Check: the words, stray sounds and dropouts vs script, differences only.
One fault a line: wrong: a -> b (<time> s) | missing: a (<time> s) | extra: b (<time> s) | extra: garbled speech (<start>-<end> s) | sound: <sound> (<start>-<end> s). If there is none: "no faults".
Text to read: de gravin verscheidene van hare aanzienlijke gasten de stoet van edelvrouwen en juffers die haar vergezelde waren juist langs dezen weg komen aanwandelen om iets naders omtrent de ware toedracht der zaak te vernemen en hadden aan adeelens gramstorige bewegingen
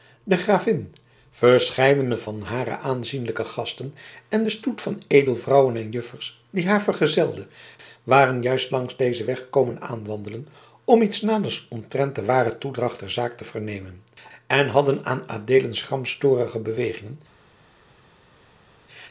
extra: en (4.3 s)